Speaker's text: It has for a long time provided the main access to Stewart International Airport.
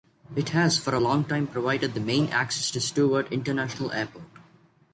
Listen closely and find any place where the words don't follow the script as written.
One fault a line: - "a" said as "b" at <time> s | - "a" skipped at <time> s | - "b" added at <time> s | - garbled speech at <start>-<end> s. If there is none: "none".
none